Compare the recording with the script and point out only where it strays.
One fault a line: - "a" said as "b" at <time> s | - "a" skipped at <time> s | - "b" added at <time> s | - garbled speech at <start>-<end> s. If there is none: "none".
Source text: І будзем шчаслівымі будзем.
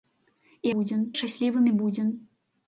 none